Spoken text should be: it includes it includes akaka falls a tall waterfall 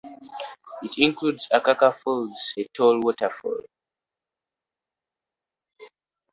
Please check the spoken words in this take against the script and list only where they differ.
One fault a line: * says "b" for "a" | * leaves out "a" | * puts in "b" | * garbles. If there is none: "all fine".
* leaves out "it includes"